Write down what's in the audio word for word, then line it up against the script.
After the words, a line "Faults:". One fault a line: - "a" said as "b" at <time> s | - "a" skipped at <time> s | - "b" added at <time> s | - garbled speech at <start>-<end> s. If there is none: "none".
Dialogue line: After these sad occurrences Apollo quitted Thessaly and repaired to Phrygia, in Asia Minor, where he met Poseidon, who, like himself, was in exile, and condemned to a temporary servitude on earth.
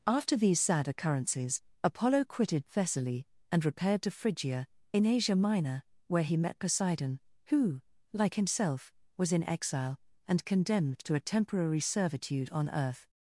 After these sad occurrences Apollo quitted Thessaly and repaired to Phrygia, in Asia Minor, where he met Poseidon, who, like himself, was in exile, and condemned to a temporary servitude on earth.
Faults:
none